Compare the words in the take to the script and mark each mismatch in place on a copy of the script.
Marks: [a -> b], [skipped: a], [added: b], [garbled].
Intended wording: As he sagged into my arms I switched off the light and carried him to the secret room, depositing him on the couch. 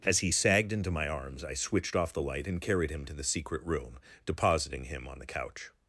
As he sagged into my arms I switched off the light and carried him to the secret room, depositing him on the couch.